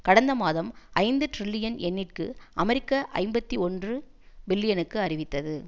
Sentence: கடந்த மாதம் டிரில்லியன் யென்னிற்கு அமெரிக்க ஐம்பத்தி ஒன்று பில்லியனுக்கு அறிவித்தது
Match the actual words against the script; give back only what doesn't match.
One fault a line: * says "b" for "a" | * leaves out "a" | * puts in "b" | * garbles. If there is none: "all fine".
* puts in "ஐந்து"